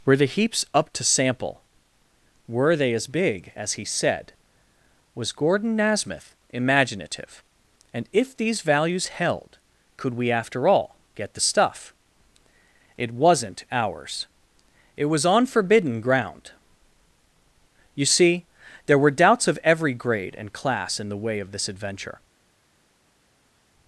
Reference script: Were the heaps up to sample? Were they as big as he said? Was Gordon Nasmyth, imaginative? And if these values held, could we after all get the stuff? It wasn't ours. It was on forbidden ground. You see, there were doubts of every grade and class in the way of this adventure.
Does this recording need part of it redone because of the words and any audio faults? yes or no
no